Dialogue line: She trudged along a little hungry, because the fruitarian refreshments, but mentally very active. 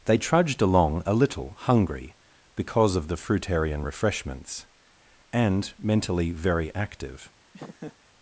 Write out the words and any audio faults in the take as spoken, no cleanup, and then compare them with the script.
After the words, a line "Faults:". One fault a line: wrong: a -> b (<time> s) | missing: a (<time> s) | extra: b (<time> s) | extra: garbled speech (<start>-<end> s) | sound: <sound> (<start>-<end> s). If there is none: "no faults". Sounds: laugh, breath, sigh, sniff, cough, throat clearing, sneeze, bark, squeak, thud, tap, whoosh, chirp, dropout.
They trudged along a little hungry, because of the fruitarian refreshments, and mentally very active.
Faults:
wrong: She -> They (0.1 s)
extra: of (3.0 s)
wrong: but -> and (5.3 s)
sound: laugh (7.5-8.0 s)